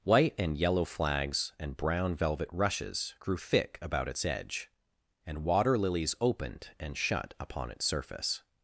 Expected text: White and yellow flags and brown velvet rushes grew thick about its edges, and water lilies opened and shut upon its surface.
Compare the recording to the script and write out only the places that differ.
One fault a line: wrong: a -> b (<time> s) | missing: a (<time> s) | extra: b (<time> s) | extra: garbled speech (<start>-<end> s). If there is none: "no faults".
wrong: edges -> edge (4.2 s)